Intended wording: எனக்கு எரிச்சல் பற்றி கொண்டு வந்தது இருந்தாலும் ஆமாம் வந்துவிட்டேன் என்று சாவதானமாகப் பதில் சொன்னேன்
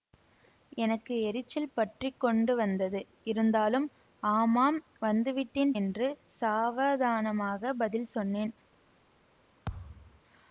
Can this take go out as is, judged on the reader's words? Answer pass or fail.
pass